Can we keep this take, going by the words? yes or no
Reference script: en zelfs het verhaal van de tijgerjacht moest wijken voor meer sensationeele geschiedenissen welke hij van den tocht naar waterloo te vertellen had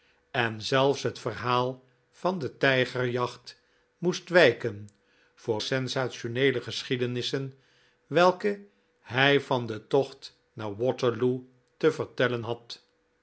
no